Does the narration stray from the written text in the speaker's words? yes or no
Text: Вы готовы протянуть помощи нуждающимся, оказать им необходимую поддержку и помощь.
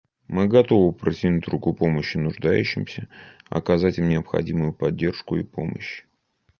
yes